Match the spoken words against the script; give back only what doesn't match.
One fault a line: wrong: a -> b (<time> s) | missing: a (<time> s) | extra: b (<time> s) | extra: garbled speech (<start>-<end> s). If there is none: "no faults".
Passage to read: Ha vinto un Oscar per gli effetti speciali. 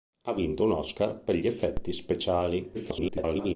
extra: garbled speech (2.7-3.6 s)